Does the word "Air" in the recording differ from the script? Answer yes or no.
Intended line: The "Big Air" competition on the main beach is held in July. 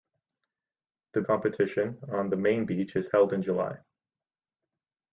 yes